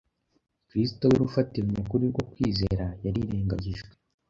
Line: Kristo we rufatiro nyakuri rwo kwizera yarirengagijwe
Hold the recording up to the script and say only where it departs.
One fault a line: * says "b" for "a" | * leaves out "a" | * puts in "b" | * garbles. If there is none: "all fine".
all fine